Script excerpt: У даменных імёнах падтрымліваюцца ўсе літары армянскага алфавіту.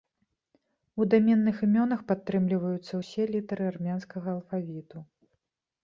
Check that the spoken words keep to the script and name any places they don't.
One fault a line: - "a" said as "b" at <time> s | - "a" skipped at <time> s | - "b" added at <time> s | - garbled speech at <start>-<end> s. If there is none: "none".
none